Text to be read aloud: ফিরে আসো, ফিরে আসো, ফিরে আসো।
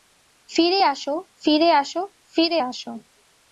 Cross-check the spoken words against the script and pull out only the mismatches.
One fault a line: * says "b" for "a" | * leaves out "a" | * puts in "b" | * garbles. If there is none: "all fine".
all fine